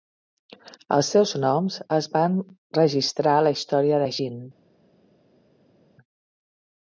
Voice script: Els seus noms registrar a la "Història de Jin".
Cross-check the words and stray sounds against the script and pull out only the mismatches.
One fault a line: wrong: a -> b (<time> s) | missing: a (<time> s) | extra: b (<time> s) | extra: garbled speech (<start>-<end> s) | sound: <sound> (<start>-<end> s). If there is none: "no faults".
extra: es van (2.0 s)